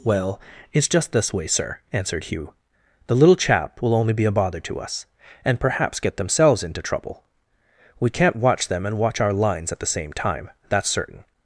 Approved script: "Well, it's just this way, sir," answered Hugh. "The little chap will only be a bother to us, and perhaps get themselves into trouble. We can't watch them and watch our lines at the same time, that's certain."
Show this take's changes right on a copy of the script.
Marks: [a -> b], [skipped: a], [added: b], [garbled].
"Well, it's just this way, sir," answered Hugh. "The little chap will only be a bother to us, and perhaps get themselves into trouble. We can't watch them and watch our lines at the same time, that's certain."